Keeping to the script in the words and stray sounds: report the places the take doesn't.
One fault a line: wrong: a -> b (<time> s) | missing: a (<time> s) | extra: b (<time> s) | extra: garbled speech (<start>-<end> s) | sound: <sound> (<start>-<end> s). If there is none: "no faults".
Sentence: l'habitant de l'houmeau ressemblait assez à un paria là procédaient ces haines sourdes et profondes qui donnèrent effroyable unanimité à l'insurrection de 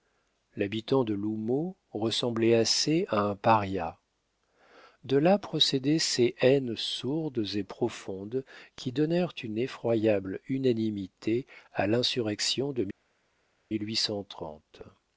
extra: de (5.0 s)
extra: une (9.4 s)